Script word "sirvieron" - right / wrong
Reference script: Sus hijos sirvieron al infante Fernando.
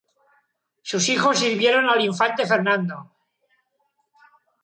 right